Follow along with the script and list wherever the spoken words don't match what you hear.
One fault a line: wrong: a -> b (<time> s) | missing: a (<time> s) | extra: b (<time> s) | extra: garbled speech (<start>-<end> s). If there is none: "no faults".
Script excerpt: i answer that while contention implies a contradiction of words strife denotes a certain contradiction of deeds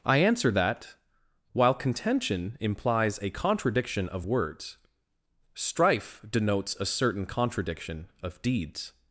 no faults